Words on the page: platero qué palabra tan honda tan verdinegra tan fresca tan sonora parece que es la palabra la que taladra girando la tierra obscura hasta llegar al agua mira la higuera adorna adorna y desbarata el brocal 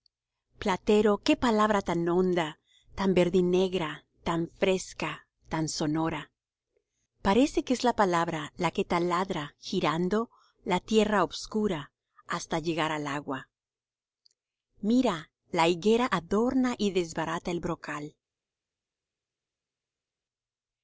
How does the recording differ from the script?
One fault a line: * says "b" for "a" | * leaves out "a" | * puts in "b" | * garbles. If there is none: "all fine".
* leaves out "adorna"